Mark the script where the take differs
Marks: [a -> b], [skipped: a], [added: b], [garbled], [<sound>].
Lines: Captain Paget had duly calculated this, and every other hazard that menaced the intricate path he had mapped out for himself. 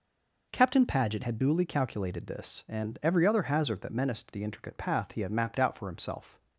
Captain Paget had duly calculated this, and every other hazard that menaced the intricate path he had mapped out for himself.